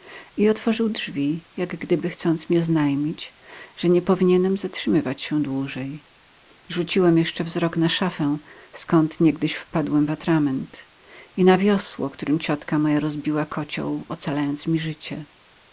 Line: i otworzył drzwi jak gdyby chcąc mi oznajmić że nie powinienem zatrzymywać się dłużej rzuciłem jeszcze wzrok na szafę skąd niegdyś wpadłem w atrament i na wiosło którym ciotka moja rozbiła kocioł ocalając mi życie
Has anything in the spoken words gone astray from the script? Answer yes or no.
no